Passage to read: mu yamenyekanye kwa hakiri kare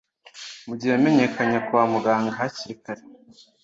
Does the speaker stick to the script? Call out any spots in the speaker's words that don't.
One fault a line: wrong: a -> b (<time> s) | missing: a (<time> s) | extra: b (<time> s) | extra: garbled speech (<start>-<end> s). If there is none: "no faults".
extra: gihe (0.8 s)
extra: muganga (1.9 s)